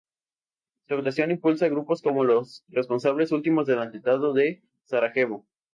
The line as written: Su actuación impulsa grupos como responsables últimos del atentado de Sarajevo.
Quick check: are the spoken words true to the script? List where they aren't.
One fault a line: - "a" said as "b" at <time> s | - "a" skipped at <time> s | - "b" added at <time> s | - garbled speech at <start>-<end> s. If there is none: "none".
- "los" added at 2.2 s